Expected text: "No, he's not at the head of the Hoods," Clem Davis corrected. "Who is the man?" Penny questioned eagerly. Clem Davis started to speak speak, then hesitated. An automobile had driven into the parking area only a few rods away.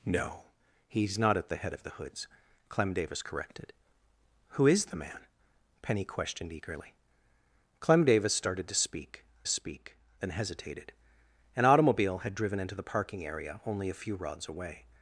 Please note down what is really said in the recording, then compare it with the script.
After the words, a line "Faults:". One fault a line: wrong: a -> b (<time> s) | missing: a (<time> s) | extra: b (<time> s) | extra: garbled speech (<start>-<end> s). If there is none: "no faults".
"No, he's not at the head of the Hoods," Clem Davis corrected. "Who is the man?" Penny questioned eagerly. Clem Davis started to speak speak, then hesitated. An automobile had driven into the parking area only a few rods away.
Faults:
no faults